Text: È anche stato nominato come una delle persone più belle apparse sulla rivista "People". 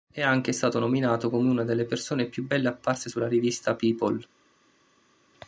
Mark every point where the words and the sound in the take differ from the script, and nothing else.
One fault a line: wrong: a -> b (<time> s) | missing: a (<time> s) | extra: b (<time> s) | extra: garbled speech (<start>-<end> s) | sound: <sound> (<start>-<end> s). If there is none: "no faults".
no faults